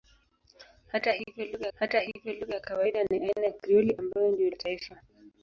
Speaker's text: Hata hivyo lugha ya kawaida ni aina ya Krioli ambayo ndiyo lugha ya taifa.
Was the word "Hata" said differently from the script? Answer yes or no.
no